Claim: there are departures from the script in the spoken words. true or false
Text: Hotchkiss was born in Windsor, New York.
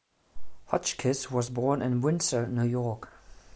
false